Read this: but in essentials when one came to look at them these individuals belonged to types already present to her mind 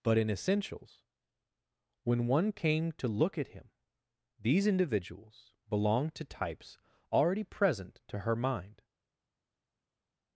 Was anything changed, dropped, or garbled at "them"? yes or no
yes